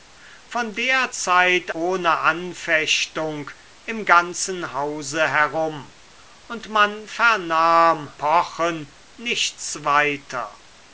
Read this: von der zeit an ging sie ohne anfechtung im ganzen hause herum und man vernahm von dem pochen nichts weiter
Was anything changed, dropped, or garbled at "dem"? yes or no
yes